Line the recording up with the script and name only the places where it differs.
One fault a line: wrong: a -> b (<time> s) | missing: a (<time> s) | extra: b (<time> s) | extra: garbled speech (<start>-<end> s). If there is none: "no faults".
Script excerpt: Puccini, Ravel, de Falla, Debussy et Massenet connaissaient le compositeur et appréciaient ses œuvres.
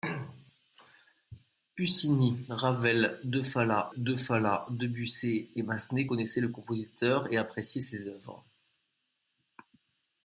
extra: de Falla (4.0 s)